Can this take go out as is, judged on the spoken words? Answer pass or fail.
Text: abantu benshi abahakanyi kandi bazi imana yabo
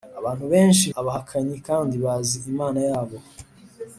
pass